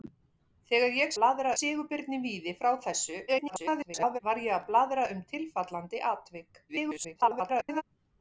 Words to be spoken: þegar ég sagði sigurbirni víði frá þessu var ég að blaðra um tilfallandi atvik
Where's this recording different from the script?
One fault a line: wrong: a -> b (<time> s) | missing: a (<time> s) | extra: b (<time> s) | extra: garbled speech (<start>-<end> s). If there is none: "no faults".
wrong: sagði -> blaðra (1.2 s)
extra: garbled speech (3.3-4.2 s)
extra: garbled speech (6.7-7.8 s)